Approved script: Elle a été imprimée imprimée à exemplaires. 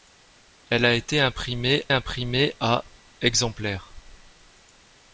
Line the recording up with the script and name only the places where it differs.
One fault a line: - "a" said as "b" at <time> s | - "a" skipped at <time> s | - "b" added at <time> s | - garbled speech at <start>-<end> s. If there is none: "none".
none